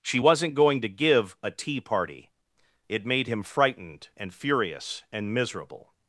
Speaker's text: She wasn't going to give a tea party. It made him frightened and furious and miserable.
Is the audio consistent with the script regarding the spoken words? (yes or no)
yes